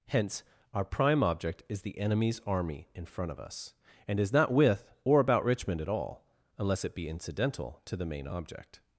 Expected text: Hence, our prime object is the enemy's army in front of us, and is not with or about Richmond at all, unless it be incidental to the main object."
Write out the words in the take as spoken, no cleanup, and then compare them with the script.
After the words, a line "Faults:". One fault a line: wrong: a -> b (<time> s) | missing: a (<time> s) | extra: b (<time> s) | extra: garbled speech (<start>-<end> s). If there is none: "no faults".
Hence, our prime object is the enemy's army in front of us, and is not with or about Richmond at all, unless it be incidental to the main object."
Faults:
no faults